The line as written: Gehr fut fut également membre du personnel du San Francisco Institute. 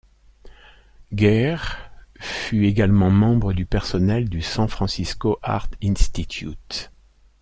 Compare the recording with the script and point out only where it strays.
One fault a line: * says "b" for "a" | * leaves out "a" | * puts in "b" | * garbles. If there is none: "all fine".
* leaves out "fut"
* puts in "Art"